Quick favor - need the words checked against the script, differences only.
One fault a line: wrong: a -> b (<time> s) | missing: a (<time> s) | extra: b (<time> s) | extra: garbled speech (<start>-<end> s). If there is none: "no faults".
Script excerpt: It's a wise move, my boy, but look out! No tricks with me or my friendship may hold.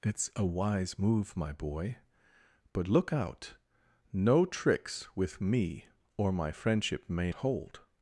no faults